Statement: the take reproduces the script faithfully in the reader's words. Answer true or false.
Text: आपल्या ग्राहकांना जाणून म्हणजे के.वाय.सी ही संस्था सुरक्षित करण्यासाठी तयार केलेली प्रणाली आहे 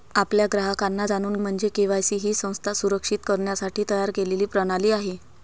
true